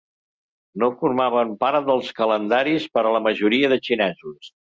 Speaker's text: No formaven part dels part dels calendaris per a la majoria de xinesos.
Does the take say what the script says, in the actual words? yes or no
no